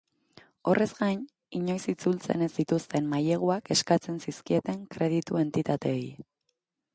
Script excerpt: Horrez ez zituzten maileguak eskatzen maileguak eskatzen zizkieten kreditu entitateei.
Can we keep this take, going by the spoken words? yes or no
no